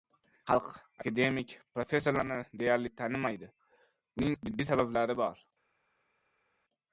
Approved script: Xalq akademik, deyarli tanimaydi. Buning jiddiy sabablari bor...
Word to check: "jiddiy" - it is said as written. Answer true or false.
true